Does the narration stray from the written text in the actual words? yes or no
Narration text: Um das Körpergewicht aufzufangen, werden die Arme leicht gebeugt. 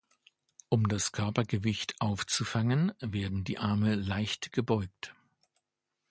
no